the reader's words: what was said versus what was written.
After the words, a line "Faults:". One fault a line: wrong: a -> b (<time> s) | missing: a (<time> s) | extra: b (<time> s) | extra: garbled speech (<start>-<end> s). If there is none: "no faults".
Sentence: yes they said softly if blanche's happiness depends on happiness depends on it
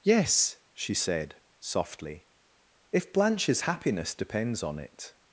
yes she said softly if blanche's happiness depends on it
Faults:
wrong: they -> she (0.7 s)
missing: happiness depends on (4.8 s)